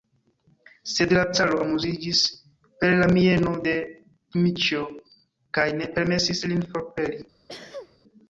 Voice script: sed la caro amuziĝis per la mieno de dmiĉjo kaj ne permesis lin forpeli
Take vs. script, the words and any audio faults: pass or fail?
fail